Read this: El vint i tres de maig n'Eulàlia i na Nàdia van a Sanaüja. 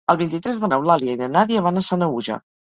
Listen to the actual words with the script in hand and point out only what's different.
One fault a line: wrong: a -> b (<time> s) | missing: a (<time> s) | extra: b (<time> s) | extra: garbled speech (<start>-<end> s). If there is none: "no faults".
missing: maig (0.7 s)